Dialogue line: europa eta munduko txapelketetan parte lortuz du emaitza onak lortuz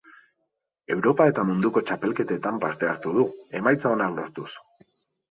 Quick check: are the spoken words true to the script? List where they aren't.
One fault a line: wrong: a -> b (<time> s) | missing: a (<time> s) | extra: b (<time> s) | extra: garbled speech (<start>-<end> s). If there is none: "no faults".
wrong: lortuz -> hartu (2.9 s)